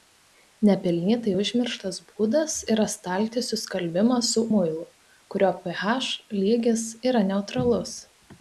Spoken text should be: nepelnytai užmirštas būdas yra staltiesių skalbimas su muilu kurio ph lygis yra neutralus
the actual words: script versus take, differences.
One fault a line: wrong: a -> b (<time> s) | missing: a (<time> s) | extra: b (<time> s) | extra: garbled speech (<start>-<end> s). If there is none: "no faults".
no faults